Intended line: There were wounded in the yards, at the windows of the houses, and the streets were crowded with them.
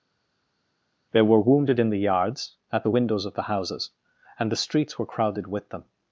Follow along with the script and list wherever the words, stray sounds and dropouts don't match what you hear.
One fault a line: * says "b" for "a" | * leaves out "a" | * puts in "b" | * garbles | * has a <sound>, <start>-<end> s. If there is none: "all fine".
all fine